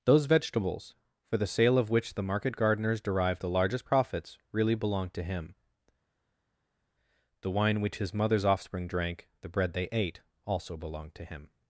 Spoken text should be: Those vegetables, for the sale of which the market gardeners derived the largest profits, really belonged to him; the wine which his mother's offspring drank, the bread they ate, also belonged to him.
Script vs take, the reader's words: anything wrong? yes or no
no